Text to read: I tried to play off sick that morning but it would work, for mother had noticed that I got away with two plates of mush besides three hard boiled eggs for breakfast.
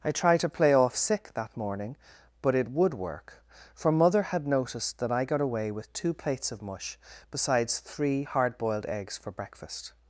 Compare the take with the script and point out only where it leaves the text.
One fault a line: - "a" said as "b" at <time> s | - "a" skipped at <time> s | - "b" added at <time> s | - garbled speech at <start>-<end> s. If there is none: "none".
none